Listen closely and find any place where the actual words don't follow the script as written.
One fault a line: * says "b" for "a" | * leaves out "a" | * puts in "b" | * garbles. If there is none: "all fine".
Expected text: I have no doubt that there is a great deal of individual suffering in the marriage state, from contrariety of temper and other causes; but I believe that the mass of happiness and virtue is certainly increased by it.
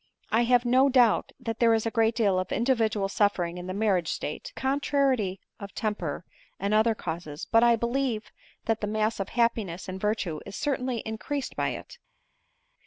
* leaves out "from"